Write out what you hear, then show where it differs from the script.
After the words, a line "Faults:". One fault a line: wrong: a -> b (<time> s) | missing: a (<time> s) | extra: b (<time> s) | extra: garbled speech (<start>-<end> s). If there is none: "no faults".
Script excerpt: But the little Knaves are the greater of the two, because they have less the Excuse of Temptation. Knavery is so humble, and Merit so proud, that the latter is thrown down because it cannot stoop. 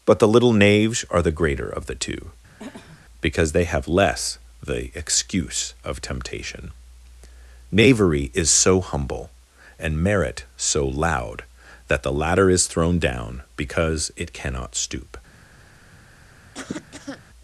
But the little Knaves are the greater of the two, because they have less the Excuse of Temptation. Knavery is so humble, and Merit so loud, that the latter is thrown down because it cannot stoop.
Faults:
wrong: proud -> loud (10.9 s)